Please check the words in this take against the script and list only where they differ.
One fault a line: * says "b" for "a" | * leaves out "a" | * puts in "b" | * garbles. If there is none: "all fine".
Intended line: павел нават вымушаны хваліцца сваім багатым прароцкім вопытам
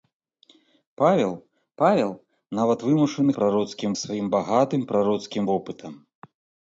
* puts in "павел"
* says "прароцкім" for "хваліцца"